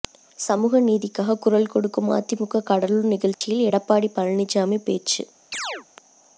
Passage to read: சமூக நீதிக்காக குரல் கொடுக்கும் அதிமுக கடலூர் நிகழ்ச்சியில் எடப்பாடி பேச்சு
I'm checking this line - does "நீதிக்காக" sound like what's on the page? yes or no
yes